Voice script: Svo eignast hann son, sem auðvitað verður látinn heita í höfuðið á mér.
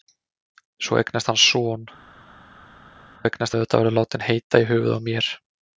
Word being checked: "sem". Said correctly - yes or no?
no